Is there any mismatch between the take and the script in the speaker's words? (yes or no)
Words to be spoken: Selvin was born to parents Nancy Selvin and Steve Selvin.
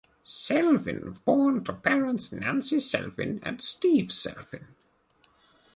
yes